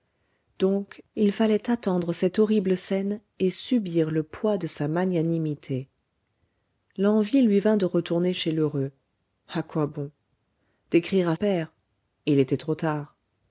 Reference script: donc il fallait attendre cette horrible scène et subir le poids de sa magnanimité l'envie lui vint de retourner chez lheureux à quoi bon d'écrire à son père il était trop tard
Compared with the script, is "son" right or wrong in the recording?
wrong